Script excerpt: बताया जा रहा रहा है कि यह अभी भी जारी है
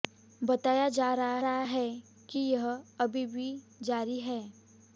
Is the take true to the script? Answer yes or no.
yes